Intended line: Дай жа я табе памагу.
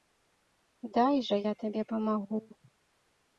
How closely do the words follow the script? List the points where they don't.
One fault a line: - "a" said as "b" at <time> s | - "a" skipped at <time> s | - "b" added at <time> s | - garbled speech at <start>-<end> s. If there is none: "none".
none